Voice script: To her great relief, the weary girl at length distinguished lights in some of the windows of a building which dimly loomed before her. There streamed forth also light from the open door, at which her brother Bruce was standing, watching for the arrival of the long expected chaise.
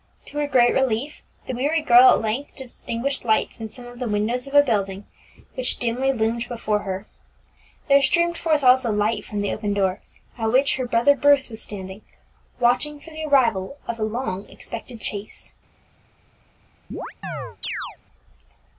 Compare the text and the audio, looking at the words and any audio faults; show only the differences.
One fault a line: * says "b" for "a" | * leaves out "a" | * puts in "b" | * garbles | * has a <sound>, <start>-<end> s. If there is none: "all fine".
* has a chirp, 16.9-18.0 s